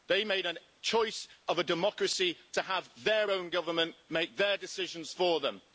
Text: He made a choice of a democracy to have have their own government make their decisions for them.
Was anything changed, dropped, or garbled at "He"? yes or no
yes